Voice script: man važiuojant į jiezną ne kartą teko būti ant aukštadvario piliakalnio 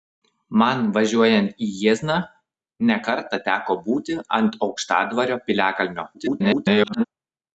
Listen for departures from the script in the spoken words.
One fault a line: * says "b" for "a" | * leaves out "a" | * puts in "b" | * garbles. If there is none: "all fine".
* garbles